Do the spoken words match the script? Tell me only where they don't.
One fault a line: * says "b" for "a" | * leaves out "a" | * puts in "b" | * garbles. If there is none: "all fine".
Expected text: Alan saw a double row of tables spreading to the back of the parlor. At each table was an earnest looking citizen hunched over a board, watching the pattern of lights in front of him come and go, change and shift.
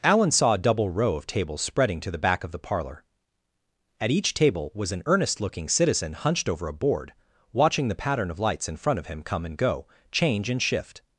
all fine